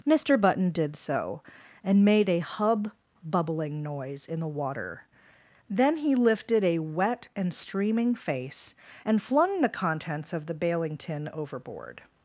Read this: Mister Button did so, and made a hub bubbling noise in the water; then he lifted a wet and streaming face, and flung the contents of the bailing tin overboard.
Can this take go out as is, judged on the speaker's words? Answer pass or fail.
pass